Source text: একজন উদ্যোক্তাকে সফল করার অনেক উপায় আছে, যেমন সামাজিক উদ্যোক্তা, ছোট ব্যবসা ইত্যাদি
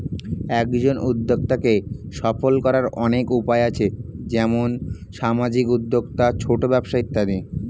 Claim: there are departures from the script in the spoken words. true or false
false